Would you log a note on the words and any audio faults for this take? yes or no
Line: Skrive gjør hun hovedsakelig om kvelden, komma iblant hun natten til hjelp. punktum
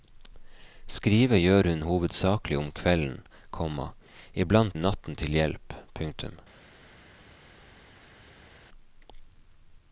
no